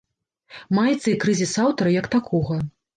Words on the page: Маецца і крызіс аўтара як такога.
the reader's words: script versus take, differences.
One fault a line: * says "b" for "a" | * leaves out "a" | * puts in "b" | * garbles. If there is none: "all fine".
all fine